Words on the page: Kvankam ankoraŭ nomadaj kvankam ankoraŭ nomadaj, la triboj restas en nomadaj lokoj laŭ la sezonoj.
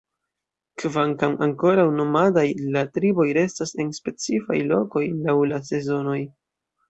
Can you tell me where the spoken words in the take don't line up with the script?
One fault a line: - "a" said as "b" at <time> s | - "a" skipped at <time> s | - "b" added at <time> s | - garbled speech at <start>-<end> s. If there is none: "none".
- "kvankam ankoraŭ nomadaj" skipped at 2.5 s
- "nomadaj" said as "specifaj" at 4.0 s